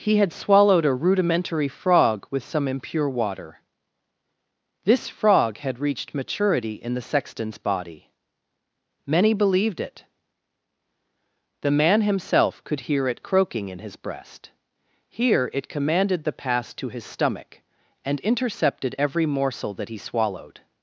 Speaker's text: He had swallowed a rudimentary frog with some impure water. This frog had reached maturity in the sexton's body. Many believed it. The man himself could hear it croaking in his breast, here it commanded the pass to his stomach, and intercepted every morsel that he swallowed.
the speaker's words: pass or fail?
pass